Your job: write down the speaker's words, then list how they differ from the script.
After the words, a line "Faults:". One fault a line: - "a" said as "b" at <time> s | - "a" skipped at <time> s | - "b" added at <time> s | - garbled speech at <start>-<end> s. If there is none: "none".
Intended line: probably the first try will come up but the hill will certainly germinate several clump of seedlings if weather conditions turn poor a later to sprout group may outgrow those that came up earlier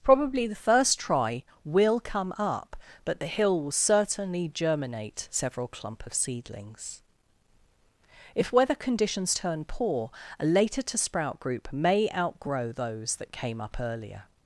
probably the first try will come up but the hill will certainly germinate several clump of seedlings if weather conditions turn poor a later to sprout group may outgrow those that came up earlier
Faults:
none